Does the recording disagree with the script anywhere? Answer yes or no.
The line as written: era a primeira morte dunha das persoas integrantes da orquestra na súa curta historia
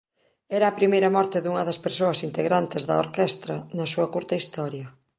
no